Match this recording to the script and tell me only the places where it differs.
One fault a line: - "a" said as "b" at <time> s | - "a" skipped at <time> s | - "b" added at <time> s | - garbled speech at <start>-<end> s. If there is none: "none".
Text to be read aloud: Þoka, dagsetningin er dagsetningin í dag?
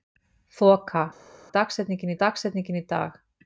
none